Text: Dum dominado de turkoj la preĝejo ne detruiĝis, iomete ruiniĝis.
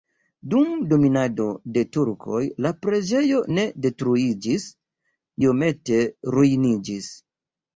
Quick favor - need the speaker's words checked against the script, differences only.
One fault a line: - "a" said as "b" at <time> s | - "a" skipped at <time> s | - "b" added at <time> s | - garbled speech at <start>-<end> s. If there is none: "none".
none